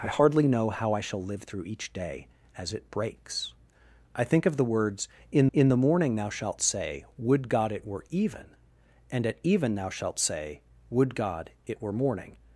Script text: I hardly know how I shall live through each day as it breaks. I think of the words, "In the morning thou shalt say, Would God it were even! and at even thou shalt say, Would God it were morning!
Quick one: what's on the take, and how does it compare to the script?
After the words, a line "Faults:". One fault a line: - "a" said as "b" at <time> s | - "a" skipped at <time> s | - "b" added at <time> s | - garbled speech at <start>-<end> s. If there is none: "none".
I hardly know how I shall live through each day as it breaks. I think of the words, "In in the morning thou shalt say, Would God it were even! and at even thou shalt say, Would God it were morning!
Faults:
- "in" added at 5.5 s